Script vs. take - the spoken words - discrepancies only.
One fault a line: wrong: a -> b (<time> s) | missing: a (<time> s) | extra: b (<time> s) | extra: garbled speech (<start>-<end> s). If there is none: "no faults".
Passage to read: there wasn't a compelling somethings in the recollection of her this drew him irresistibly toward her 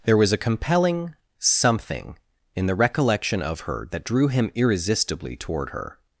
wrong: wasn't -> was (0.2 s)
wrong: somethings -> something (1.4 s)
wrong: this -> that (3.9 s)